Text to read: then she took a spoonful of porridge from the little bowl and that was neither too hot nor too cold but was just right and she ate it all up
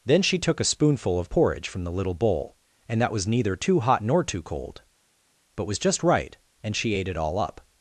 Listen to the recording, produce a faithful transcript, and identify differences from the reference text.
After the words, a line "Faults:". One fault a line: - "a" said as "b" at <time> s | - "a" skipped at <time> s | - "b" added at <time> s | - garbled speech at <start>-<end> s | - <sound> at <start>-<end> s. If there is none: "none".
then she took a spoonful of porridge from the little bowl and that was neither too hot nor too cold but was just right and she ate it all up
Faults:
none